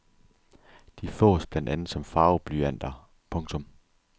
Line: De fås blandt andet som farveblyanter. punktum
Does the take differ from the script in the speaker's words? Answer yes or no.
no